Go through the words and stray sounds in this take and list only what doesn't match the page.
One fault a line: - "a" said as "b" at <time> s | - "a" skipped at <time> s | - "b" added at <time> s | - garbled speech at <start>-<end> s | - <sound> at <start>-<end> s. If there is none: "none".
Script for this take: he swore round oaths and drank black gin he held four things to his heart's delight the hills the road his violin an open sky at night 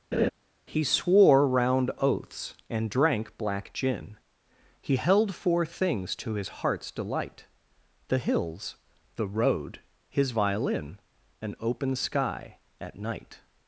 - laugh at 0.1-0.3 s